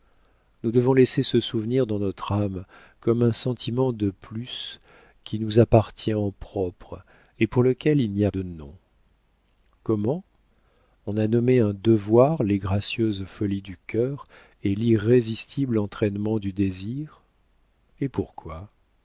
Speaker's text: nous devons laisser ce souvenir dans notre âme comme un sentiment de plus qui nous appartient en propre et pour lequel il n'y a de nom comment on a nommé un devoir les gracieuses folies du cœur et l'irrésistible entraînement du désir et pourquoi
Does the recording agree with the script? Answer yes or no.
yes